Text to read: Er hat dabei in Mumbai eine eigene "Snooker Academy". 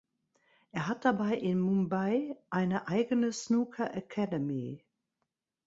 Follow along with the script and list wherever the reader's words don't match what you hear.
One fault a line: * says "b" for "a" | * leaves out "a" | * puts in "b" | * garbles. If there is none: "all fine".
all fine